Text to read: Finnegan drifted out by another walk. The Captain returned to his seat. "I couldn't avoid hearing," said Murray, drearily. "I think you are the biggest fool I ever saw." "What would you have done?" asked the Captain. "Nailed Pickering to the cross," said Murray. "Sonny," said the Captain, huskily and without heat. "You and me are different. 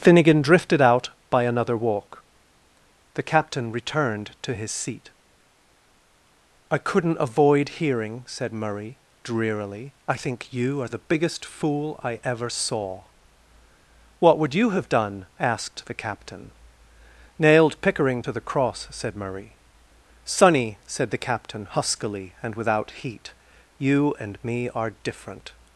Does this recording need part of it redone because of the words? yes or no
no